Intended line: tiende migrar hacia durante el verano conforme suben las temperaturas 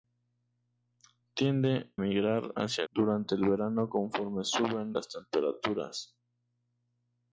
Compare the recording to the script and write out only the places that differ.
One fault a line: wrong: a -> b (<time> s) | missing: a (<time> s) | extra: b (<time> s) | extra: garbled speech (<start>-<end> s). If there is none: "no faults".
no faults